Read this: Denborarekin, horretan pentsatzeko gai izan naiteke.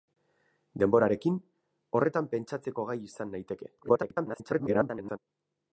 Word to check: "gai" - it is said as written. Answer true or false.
true